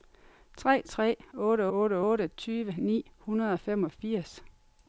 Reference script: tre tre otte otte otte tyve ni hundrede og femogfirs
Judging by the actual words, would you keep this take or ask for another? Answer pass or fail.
pass